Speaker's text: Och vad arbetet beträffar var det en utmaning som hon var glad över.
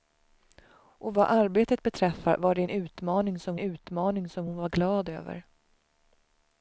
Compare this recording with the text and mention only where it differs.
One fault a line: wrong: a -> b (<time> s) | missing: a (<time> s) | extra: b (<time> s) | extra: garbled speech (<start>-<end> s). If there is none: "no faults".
extra: utmaning som (3.6 s)